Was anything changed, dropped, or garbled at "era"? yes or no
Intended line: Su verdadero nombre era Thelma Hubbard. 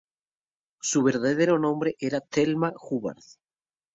no